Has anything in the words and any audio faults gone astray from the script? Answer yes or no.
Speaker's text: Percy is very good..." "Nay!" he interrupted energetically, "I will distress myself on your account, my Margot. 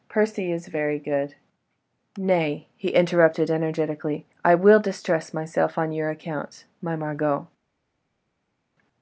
no